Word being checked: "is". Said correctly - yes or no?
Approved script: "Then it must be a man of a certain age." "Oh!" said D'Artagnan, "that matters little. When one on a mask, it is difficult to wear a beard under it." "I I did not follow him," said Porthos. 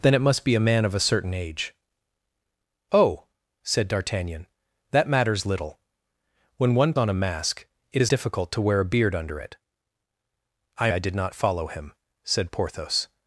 yes